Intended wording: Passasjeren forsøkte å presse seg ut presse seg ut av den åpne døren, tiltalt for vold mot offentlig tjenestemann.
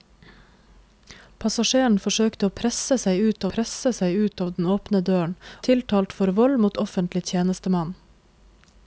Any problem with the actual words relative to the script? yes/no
no